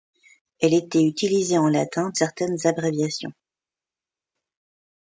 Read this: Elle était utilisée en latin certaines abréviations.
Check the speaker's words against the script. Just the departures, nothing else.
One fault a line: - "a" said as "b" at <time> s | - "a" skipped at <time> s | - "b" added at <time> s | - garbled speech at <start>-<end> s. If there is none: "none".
none